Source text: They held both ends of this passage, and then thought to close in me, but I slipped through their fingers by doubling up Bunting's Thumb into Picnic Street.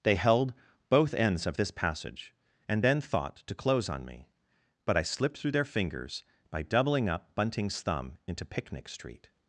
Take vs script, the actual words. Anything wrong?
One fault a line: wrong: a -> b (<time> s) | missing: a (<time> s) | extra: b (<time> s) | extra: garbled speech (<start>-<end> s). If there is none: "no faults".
wrong: in -> on (3.9 s)